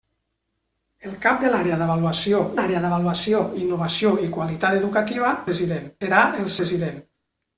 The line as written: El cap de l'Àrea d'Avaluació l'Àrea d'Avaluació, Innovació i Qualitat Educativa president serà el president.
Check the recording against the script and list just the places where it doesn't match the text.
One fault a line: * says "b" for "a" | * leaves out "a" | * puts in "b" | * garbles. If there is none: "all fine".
all fine